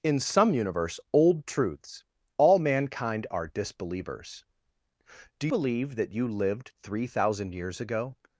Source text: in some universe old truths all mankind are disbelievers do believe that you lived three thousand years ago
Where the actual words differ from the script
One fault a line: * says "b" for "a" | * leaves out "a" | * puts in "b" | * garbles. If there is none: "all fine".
all fine